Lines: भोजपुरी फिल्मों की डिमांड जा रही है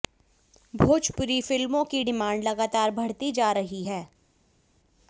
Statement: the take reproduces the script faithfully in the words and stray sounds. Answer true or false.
false